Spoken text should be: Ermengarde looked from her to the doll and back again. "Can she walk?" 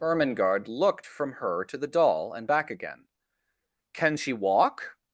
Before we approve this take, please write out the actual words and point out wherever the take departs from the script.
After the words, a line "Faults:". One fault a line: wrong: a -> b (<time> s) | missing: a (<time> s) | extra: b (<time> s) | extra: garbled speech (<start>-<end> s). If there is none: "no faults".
Ermengarde looked from her to the doll and back again. "Can she walk?"
Faults:
no faults